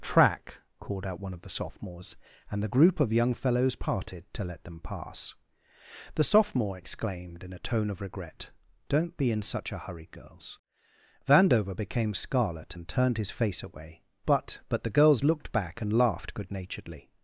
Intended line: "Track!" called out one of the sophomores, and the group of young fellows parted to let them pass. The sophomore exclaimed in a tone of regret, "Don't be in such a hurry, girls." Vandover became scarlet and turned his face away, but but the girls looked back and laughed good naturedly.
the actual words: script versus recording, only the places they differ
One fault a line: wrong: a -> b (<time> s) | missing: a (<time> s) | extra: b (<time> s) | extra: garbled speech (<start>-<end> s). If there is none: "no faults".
no faults